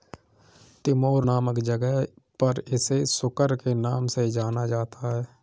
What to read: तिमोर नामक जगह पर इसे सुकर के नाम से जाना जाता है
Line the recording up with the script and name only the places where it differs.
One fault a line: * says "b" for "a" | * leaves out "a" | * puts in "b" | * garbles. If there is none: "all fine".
all fine